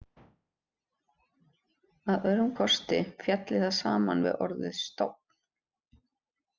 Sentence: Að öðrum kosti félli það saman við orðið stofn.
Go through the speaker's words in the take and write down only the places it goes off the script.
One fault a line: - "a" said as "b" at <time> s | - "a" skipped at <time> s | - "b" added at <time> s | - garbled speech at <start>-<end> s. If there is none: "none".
none